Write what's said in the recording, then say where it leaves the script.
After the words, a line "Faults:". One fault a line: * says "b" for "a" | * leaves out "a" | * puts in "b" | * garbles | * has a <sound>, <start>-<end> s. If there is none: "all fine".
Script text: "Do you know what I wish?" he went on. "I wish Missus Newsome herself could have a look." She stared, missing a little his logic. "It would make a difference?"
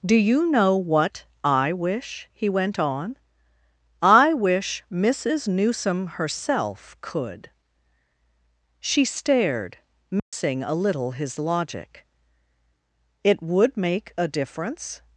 "Do you know what I wish?" he went on. "I wish Missus Newsome herself could." She stared, missing a little his logic. "It would make a difference?"
Faults:
* leaves out "have a look"
* has a dropout, 10.2-10.3 s